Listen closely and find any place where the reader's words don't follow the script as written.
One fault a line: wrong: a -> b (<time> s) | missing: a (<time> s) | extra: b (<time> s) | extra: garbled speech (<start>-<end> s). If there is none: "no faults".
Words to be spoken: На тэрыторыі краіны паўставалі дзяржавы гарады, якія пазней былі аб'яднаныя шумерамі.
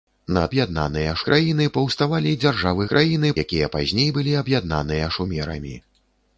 wrong: тэрыторыі -> аб'яднаныя (0.5 s)
wrong: гарады -> краіны (2.9 s)